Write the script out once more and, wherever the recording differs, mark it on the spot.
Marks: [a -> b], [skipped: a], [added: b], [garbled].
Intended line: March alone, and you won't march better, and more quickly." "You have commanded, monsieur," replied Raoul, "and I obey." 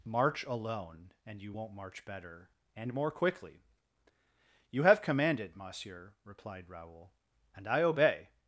March alone, and you won't march better, and more quickly." "You have commanded, monsieur," replied Raoul, "and I obey."